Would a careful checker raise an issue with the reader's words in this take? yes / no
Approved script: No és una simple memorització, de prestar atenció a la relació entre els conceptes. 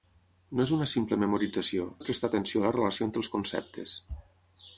no